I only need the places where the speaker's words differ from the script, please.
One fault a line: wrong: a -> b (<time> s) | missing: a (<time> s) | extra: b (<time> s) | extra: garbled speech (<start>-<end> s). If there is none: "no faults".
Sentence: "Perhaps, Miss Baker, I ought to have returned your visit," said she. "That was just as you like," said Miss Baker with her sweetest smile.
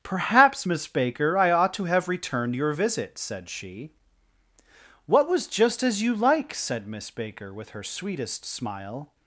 wrong: That -> What (5.1 s)